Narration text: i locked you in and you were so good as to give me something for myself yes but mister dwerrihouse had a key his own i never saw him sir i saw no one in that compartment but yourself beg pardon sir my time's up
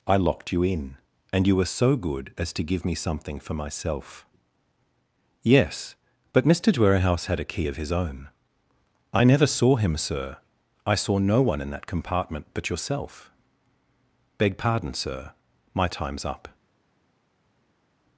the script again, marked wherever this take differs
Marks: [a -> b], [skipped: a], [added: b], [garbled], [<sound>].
i locked you in and you were so good as to give me something for myself yes but mister dwerrihouse had a key [added: of] his own i never saw him sir i saw no one in that compartment but yourself beg pardon sir my time's up